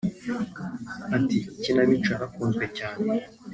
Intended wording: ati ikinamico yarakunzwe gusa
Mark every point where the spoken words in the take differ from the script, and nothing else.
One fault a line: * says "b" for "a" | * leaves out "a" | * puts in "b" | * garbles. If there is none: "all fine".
* says "cyane" for "gusa"